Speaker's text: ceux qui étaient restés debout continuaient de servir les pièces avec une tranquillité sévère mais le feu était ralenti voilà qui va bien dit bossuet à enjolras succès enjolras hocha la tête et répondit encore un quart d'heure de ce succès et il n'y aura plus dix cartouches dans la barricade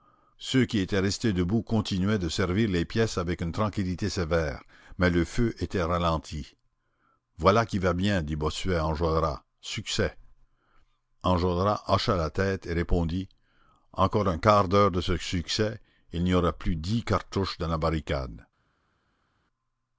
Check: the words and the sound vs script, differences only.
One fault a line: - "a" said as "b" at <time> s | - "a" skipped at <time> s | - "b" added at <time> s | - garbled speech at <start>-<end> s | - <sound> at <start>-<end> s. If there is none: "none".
none